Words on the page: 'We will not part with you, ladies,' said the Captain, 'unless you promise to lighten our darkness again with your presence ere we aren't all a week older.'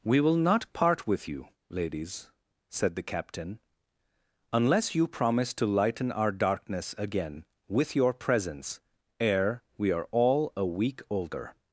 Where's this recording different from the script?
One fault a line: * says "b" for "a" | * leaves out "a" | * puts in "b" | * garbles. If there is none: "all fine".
* says "are" for "aren't"